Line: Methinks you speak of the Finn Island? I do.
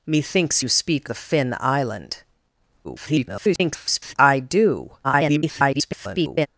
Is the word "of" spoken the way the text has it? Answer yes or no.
no